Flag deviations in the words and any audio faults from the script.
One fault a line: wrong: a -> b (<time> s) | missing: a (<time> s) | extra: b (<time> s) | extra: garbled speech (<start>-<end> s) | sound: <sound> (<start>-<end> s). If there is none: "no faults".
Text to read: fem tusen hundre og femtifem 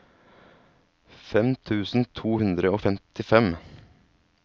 extra: to (2.2 s)